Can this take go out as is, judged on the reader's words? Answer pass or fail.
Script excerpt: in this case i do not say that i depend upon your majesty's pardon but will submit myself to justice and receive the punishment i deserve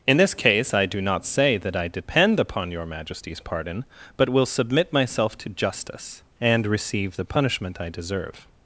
pass